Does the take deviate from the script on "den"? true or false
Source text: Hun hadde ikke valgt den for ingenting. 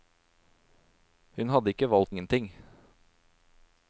true